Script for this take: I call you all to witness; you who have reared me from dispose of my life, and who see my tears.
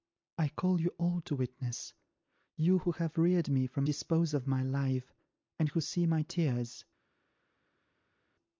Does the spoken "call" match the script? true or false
true